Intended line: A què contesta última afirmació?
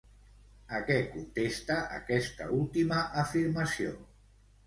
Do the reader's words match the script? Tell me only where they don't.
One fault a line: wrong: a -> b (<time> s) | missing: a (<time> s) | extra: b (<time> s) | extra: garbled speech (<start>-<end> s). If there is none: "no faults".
extra: aquesta (2.0 s)